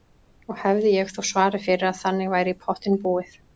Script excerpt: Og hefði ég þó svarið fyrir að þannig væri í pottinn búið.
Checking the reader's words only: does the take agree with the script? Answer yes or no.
yes